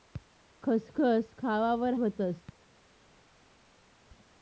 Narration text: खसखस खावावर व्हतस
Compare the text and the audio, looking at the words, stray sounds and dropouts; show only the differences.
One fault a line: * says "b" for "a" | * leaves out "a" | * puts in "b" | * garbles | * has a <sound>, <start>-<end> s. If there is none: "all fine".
all fine